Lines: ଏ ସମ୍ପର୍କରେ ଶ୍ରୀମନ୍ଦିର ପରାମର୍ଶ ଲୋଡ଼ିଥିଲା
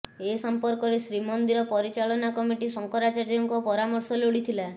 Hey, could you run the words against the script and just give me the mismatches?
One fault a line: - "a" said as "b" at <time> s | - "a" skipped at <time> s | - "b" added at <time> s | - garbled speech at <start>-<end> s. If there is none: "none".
- "ପରିଚାଳନା କମିଟି ଶଙ୍କରାଚାର୍ଯ୍ୟଙ୍କ" added at 1.7 s